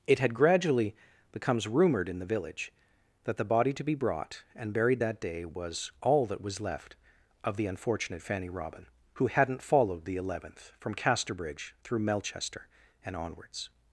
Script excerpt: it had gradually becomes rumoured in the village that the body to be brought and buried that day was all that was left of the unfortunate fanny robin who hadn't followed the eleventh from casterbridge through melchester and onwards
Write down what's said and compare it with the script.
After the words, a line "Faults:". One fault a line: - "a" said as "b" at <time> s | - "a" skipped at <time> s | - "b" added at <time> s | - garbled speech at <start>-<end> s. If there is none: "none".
it had gradually becomes rumoured in the village that the body to be brought and buried that day was all that was left of the unfortunate fanny robin who hadn't followed the eleventh from casterbridge through melchester and onwards
Faults:
none